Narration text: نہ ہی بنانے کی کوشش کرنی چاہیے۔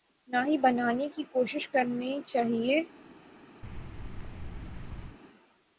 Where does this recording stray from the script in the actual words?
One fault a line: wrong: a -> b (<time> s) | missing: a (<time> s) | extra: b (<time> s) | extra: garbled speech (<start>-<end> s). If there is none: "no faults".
no faults